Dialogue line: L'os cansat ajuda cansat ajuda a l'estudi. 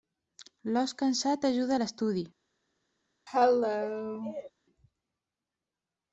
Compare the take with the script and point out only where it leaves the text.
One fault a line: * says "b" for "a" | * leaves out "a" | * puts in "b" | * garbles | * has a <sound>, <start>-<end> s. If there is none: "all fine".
* leaves out "cansat ajuda"
* has a cough, 3.3-4.5 s